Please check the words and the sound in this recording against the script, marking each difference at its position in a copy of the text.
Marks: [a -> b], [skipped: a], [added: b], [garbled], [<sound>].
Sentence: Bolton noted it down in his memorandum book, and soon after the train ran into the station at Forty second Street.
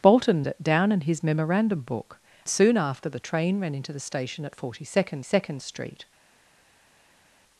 Bolton [skipped: noted] it down in his memorandum book, [skipped: and] soon after the train ran into the station at Forty second [added: second] Street.